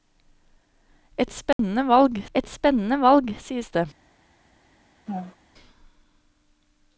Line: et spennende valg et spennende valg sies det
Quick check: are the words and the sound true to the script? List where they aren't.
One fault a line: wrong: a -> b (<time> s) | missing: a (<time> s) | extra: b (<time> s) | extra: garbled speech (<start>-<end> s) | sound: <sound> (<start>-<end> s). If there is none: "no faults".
sound: dropout (1.5-1.6 s)
sound: laugh (5.1-5.4 s)